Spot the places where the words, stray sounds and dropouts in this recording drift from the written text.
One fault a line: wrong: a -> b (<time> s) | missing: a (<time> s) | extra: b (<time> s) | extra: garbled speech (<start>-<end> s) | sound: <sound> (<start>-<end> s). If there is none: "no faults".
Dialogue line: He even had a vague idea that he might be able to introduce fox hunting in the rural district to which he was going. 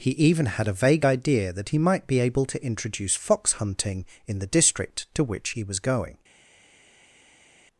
missing: rural (4.5 s)